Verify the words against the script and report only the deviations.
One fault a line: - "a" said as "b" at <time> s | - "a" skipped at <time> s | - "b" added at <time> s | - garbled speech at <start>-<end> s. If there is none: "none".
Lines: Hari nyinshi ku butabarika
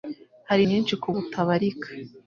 none